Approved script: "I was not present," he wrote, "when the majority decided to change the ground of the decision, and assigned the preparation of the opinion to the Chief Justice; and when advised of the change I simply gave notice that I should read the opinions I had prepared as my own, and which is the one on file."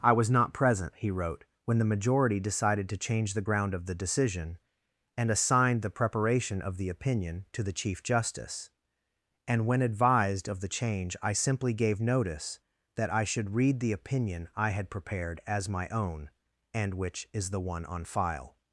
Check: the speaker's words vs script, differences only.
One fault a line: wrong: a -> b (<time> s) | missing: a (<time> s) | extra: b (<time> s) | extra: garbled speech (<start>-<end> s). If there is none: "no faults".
wrong: opinions -> opinion (13.9 s)